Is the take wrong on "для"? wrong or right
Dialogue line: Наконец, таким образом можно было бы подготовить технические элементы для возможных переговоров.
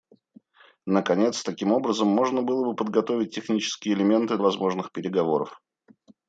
wrong